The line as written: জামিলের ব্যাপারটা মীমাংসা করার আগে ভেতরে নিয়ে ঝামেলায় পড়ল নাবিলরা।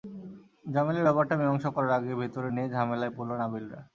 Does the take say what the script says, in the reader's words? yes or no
yes